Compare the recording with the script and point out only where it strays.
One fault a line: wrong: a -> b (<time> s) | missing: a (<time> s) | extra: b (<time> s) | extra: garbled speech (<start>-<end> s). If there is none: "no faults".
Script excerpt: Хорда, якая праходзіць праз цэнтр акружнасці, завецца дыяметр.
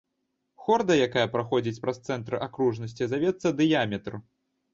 no faults